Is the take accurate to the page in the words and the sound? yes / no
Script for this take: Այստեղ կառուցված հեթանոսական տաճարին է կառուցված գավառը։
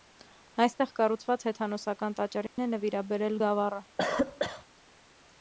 no